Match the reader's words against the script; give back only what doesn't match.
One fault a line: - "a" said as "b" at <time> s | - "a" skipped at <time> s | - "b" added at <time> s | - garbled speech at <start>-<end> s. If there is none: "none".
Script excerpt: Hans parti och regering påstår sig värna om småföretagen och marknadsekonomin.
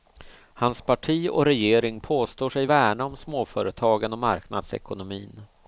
none